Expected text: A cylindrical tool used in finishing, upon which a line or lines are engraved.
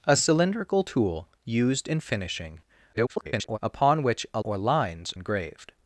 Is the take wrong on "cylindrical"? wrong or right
right